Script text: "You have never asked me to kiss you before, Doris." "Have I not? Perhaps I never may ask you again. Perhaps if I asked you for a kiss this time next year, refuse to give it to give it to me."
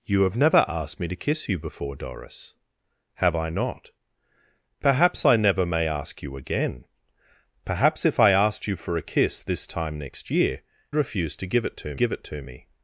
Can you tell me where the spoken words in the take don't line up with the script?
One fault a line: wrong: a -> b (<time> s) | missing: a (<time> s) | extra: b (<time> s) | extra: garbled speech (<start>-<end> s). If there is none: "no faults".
no faults